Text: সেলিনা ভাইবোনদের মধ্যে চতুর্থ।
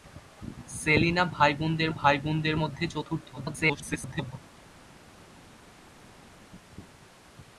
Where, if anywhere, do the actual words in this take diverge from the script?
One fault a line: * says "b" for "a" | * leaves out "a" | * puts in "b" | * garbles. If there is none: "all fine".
* puts in "ভাইবোনদের"
* garbles